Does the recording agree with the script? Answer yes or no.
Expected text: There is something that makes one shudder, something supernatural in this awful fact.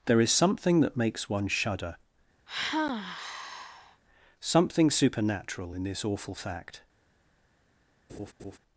yes